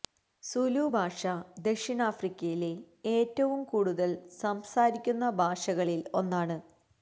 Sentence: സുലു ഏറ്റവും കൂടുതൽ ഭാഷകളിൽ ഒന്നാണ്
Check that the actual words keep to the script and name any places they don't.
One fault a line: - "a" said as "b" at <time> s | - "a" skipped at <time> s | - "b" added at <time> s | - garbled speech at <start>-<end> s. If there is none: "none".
- "ഭാഷ ദക്ഷിണാഫ്രിക്കയിലെ" added at 0.9 s
- "സംസാരിക്കുന്ന" added at 4.4 s